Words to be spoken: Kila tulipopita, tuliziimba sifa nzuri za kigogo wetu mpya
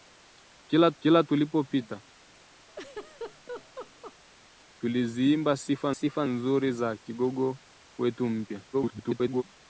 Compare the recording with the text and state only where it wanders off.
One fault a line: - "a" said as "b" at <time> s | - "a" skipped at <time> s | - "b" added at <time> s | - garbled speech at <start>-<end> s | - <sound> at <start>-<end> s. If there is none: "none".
- "kila" added at 1.0 s
- laugh at 2.7-4.1 s
- "sifa" added at 5.9 s
- garbled speech at 8.7-9.4 s